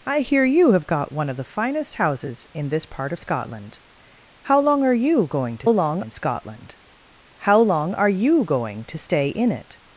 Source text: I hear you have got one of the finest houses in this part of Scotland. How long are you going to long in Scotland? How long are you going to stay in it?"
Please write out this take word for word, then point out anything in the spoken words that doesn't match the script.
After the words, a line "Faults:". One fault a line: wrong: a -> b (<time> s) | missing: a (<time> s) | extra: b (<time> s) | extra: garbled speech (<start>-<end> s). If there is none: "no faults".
I hear you have got one of the finest houses in this part of Scotland. How long are you going to long in Scotland? How long are you going to stay in it?"
Faults:
no faults